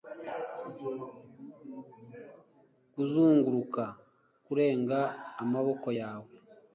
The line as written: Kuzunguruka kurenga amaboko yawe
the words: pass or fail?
pass